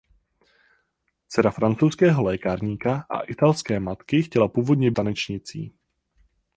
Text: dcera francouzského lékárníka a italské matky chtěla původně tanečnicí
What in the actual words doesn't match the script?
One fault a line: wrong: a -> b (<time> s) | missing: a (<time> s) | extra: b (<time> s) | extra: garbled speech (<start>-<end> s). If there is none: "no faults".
no faults